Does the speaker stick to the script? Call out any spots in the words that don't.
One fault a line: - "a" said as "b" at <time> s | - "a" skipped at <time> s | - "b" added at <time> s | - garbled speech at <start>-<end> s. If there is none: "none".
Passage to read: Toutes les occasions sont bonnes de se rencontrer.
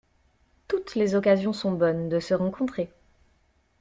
none